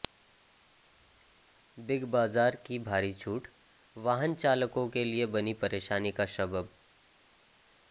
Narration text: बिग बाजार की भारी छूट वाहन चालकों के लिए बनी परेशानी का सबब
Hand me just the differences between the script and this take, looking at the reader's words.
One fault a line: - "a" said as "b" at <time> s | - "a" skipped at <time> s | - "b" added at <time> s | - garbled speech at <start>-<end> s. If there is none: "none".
none